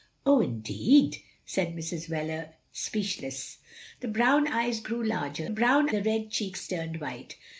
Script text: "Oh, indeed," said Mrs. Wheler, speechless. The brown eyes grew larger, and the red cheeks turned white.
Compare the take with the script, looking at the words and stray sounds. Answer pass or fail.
fail